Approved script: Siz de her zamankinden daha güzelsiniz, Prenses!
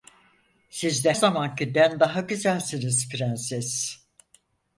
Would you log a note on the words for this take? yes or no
yes